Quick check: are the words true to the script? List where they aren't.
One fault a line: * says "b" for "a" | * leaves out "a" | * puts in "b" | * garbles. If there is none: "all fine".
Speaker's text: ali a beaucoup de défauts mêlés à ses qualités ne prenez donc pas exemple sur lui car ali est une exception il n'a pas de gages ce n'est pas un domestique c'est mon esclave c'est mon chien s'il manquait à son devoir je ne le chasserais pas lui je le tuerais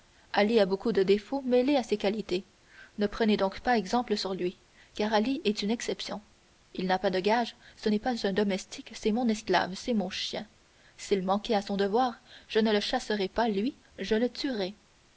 all fine